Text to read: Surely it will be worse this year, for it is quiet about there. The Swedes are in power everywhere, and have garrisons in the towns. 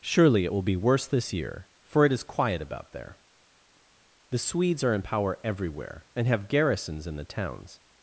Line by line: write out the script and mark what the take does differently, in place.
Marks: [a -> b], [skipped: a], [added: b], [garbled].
Surely it will be worse this year, for it is quiet about there. The Swedes are in power everywhere, and have garrisons in the towns.